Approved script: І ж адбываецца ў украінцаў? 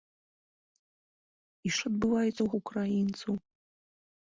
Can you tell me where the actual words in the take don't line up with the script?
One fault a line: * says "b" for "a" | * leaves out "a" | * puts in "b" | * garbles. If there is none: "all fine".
all fine